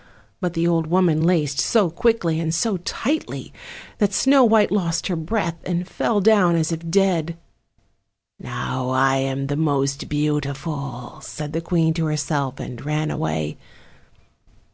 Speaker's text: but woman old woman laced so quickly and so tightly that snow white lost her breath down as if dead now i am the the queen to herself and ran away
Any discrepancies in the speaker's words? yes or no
yes